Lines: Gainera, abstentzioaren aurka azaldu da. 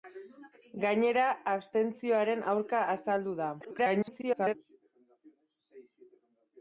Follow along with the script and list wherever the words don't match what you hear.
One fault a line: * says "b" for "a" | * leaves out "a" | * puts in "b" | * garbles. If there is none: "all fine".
* garbles